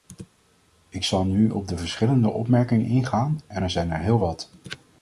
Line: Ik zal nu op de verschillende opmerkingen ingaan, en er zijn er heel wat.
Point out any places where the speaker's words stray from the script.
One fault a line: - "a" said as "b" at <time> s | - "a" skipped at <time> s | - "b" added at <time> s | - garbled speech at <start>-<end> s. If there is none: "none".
none